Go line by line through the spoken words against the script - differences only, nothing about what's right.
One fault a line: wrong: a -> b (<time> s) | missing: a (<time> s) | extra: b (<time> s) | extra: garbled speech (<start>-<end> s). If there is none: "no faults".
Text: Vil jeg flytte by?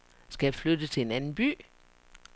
wrong: Vil -> Skal (0.3 s)
extra: til en anden (0.9 s)